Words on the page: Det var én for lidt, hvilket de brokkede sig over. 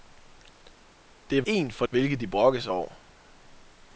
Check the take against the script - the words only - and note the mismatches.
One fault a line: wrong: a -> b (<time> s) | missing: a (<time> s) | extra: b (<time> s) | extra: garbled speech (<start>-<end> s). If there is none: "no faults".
missing: var (1.4 s)
missing: lidt (1.9 s)